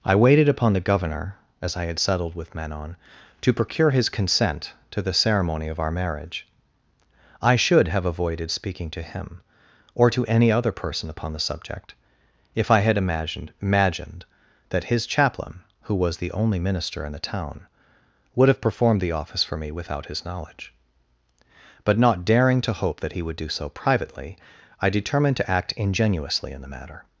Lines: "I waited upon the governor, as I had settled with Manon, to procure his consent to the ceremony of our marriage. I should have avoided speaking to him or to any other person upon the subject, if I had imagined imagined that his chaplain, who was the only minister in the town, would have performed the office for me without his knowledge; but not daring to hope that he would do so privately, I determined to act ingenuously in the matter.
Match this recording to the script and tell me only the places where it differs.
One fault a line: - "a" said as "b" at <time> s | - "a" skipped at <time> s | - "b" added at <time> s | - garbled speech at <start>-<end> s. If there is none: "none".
none